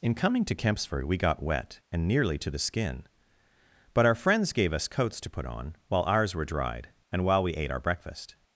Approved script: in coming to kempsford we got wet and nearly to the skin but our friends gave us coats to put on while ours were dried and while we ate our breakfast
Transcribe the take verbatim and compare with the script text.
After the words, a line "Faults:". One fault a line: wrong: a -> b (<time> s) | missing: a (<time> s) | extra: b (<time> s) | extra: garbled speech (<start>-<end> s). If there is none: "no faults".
in coming to kempsford we got wet and nearly to the skin but our friends gave us coats to put on while ours were dried and while we ate our breakfast
Faults:
no faults